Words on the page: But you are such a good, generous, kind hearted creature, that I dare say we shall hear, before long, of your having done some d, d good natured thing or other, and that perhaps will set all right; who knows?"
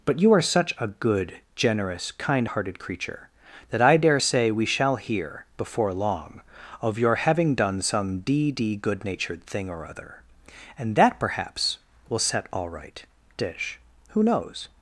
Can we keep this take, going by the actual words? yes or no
no